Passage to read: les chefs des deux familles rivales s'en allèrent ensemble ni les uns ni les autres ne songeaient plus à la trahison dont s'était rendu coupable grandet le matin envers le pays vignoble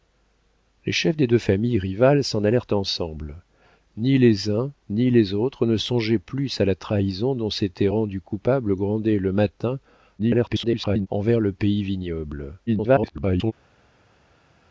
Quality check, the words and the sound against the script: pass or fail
fail